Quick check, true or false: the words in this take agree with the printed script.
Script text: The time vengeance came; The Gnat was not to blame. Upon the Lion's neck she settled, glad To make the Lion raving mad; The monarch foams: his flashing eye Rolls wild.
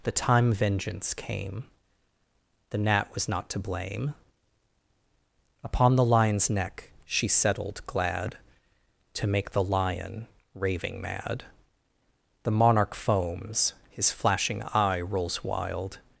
true